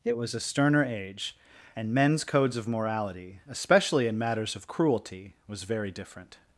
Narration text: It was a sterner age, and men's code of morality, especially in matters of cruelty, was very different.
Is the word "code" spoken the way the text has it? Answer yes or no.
no